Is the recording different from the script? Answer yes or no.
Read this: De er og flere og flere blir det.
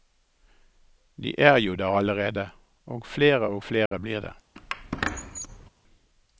yes